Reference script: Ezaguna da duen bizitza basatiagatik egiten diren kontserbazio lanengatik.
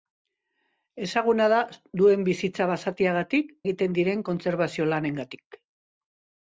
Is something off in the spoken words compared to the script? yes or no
no